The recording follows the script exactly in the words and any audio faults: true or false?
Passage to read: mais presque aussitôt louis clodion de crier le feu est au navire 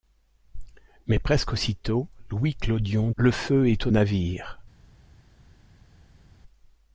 false